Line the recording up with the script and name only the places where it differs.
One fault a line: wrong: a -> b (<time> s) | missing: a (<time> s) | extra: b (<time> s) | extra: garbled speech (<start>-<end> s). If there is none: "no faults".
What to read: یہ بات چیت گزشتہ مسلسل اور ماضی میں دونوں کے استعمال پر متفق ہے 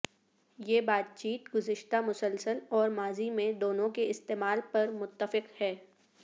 no faults